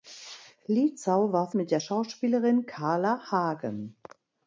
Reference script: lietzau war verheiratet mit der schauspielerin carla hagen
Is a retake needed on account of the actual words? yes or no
yes